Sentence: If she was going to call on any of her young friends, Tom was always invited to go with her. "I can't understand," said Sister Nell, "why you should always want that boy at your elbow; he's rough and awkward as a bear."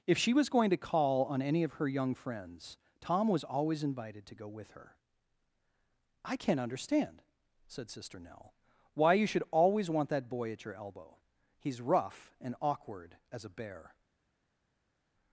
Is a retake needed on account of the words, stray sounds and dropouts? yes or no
no